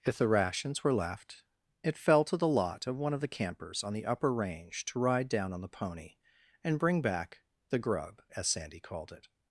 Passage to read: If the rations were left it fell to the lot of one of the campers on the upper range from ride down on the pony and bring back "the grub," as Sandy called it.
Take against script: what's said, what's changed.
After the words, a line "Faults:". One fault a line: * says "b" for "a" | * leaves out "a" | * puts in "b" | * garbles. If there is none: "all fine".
If the rations were left it fell to the lot of one of the campers on the upper range to ride down on the pony and bring back "the grub," as Sandy called it.
Faults:
* says "to" for "from"